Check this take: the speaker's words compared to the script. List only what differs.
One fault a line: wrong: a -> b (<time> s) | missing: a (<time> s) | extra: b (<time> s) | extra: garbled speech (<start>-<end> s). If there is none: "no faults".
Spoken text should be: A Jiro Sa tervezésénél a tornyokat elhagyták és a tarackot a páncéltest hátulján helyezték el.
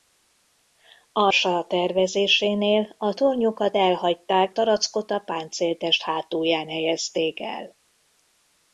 missing: Jiro (1.3 s)
missing: és a (4.5 s)